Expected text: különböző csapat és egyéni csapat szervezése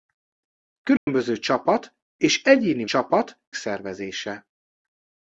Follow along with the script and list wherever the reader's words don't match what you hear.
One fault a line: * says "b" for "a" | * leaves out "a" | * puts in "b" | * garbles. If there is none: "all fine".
all fine